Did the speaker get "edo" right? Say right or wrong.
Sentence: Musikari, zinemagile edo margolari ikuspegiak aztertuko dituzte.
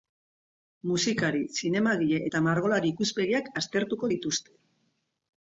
wrong